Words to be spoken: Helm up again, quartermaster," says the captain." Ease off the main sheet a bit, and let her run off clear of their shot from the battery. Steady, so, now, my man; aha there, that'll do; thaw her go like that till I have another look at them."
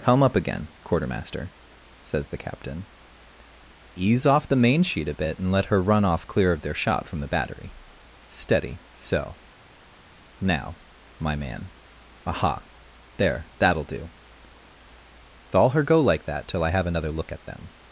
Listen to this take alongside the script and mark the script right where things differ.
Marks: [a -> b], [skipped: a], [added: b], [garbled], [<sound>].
Helm up again, quartermaster," says the captain." Ease off the main sheet a bit, and let her run off clear of their shot from the battery. Steady, so, now, my man; aha there, that'll do; thaw her go like that till I have another look at them."